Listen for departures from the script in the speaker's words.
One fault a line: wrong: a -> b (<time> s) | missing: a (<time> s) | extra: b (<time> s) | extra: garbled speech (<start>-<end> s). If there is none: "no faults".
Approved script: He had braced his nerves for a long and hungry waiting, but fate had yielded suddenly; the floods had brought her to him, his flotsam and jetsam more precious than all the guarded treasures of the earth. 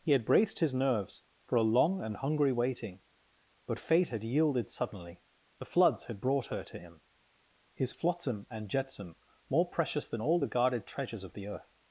no faults